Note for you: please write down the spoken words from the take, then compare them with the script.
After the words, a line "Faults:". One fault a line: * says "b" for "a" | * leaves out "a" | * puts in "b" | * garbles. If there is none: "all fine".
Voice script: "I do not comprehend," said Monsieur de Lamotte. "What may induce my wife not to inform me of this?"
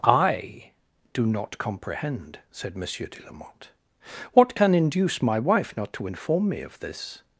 "I do not comprehend," said Monsieur de Lamotte. "What can induce my wife not to inform me of this?"
Faults:
* says "can" for "may"